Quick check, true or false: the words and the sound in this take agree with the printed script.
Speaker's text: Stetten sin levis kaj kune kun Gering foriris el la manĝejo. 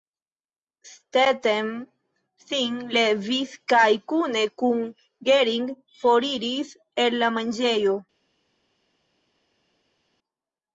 true